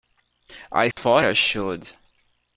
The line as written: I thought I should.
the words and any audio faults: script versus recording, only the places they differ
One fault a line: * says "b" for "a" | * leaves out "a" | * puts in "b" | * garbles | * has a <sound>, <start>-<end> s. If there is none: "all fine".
* has a dropout, 0.9-1.0 s